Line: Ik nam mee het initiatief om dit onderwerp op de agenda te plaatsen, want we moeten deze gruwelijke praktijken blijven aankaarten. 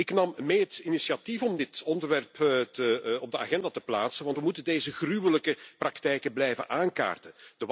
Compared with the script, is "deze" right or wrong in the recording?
right